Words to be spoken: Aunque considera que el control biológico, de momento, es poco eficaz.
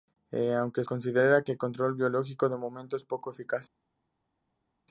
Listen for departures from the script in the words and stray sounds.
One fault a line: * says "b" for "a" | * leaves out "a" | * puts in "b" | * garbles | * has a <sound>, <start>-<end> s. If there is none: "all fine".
all fine